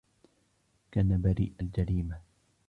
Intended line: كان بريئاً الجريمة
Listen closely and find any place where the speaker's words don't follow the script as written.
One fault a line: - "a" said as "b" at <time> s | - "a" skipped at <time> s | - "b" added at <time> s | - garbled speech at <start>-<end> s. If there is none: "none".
none